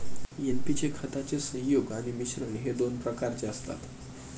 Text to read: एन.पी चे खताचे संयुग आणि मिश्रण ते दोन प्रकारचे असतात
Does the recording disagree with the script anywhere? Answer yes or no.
yes